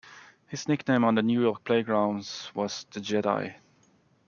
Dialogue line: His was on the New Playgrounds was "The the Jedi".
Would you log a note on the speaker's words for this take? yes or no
yes